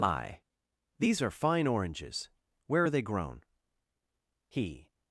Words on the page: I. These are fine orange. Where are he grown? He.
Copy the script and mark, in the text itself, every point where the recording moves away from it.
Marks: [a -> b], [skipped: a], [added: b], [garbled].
I. These are fine [orange. -> oranges] Where are [he -> they] grown? He.